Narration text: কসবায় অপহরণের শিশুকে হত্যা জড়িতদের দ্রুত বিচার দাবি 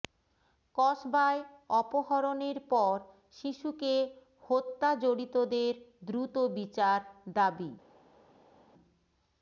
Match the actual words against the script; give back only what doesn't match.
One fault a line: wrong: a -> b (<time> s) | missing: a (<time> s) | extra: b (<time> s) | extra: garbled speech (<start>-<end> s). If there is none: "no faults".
extra: পর (2.7 s)